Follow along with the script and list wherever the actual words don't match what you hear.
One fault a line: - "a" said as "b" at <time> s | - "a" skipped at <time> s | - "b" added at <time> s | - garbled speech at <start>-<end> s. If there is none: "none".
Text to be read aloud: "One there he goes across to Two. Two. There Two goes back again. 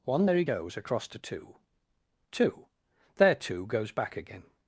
none